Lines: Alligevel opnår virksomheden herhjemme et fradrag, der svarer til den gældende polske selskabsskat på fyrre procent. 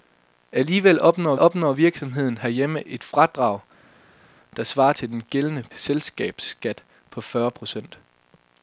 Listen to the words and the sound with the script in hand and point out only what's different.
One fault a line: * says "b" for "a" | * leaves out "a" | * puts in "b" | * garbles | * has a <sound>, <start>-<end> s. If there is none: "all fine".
* puts in "opnår"
* leaves out "polske"